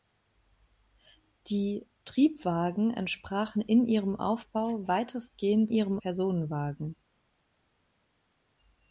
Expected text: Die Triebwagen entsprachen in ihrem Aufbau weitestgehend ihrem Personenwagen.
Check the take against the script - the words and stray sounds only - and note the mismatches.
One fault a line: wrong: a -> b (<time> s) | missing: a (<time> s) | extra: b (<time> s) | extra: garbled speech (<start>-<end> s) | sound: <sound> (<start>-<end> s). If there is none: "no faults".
no faults